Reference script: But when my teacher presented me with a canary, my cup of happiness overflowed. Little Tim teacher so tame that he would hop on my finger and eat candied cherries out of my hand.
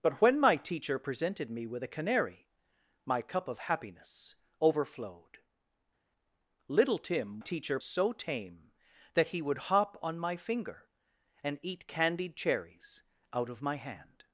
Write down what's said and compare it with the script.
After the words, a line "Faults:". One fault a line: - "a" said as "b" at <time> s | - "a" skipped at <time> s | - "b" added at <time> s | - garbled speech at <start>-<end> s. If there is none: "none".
But when my teacher presented me with a canary, my cup of happiness overflowed. Little Tim teacher so tame that he would hop on my finger and eat candied cherries out of my hand.
Faults:
none